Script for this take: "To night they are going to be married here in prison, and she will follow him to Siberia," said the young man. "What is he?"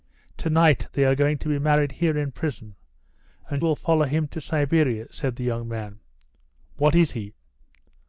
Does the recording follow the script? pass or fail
fail